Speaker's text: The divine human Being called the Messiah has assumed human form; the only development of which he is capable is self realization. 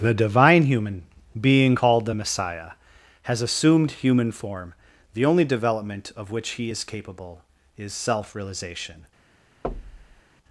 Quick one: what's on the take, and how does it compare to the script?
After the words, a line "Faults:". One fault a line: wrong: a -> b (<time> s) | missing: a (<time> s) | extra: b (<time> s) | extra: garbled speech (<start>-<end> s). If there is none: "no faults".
The divine human Being called the Messiah has assumed human form; the only development of which he is capable is self realization.
Faults:
no faults